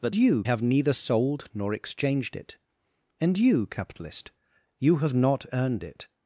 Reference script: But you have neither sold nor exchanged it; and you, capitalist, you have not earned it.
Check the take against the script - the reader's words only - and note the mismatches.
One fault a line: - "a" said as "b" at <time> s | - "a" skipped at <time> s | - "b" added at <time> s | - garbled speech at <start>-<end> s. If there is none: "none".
none